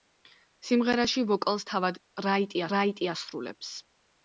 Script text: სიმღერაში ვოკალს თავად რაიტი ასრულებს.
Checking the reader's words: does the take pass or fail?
fail